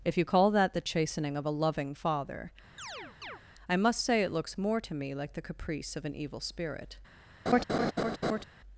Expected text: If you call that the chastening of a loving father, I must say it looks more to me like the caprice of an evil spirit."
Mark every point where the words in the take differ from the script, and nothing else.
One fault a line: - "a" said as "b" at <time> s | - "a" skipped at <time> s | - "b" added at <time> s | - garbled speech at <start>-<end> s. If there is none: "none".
none